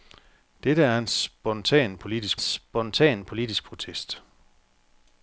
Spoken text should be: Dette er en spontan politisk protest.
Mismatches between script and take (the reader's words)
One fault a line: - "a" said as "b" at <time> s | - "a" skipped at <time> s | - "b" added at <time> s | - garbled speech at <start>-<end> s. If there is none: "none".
- "spontan politisk" added at 2.4 s